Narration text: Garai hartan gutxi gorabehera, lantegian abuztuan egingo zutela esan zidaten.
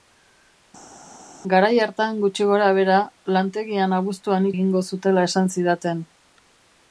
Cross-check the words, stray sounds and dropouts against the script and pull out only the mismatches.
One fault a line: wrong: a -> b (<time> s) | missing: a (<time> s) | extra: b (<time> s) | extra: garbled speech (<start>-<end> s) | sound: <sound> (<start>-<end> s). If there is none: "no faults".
no faults